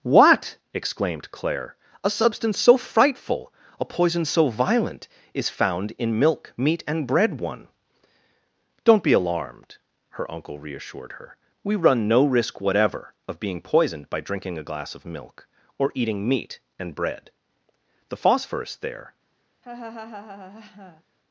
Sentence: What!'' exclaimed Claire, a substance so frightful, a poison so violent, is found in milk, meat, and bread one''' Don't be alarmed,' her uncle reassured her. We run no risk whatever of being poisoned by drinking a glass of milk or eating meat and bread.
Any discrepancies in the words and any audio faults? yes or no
yes